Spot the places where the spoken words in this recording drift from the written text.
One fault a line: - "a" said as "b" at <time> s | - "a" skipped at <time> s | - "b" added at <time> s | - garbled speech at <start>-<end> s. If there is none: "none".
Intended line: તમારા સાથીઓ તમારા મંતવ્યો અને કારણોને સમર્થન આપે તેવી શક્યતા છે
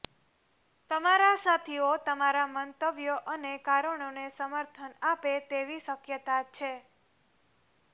none